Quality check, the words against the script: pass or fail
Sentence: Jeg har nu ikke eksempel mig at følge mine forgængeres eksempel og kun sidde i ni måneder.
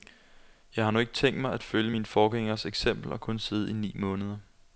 fail